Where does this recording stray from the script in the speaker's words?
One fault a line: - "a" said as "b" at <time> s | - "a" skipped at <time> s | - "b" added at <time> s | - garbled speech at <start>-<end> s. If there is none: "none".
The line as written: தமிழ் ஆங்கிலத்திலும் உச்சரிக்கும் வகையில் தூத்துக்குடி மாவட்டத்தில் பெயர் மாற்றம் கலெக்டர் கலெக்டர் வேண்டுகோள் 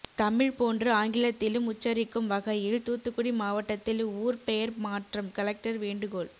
- "போன்று" added at 0.5 s
- "ஊர்" added at 4.2 s
- "கலெக்டர்" skipped at 5.8 s